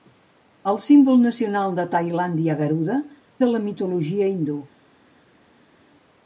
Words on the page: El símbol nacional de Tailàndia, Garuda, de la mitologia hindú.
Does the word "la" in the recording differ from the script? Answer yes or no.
no